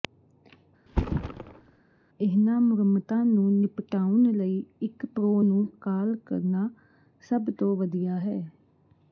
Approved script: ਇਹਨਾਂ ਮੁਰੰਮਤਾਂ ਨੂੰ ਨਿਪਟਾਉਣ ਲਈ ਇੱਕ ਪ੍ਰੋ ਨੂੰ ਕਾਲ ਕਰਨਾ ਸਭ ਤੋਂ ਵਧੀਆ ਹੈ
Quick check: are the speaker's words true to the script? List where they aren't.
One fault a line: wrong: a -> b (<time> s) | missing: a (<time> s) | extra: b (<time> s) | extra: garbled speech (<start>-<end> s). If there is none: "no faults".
no faults